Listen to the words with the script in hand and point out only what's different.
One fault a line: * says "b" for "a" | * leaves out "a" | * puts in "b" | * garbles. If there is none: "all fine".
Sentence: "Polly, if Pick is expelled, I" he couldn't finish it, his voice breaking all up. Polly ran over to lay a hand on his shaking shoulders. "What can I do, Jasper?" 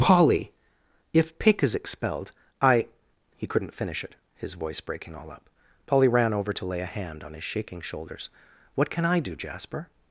all fine